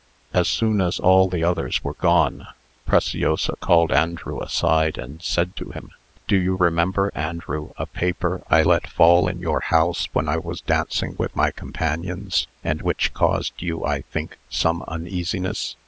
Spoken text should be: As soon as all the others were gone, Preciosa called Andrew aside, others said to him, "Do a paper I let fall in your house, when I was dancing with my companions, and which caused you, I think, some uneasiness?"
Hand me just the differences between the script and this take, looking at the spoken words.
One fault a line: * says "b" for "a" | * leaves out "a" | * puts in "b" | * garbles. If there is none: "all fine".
* says "and" for "others"
* puts in "you remember Andrew"